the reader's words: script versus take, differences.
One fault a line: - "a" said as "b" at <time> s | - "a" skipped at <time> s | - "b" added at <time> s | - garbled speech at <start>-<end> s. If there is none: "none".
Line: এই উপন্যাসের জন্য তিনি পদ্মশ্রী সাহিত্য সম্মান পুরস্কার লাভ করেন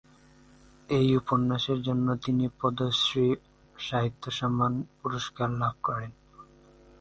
none